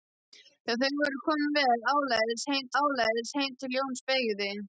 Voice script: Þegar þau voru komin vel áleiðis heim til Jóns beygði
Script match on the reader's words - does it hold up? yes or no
no